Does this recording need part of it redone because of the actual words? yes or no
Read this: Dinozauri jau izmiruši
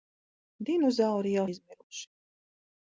no